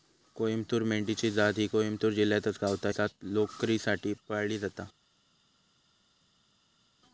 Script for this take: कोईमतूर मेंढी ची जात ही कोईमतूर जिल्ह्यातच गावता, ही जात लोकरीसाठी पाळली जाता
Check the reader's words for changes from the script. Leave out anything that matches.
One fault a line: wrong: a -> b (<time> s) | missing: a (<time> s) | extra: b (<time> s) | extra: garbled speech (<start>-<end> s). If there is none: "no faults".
missing: ही (2.9 s)